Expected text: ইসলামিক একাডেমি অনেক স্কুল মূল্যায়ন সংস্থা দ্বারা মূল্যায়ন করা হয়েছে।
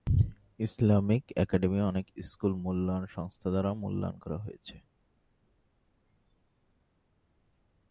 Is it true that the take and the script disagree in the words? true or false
false